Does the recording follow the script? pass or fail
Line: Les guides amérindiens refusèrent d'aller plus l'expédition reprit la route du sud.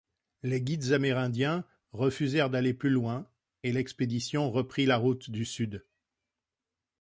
fail